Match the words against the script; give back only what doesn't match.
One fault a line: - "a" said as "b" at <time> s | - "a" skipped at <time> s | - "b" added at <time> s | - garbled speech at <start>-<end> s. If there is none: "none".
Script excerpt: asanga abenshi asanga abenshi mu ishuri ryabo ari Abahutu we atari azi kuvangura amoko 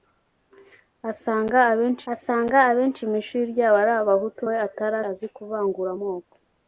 none